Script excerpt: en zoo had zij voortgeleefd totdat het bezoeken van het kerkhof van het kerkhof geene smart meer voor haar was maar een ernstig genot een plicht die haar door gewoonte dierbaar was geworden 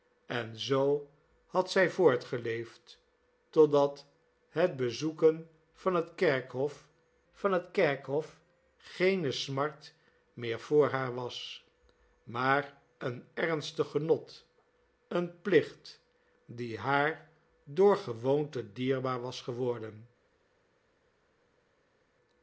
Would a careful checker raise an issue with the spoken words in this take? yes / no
no